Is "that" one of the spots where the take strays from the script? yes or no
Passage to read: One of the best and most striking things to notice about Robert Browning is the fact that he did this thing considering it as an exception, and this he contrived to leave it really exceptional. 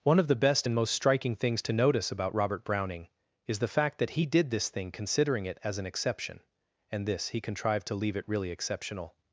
no